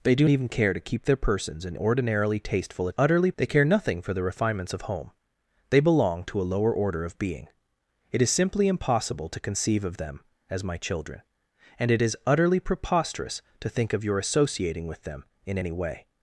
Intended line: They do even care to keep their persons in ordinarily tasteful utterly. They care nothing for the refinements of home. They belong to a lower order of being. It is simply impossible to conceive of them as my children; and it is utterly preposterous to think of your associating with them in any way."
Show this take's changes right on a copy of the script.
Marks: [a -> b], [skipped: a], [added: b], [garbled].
They do even care to keep their persons in ordinarily tasteful utterly. They care nothing for the refinements of home. They belong to a lower order of being. It is simply impossible to conceive of them as my children; and it is utterly preposterous to think of your associating with them in any way."